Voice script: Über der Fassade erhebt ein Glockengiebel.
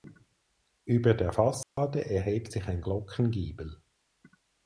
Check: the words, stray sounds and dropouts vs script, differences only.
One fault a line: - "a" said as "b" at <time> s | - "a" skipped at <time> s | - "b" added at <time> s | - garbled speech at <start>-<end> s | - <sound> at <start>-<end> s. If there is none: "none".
- dropout at 1.6-1.8 s
- "sich" added at 2.5 s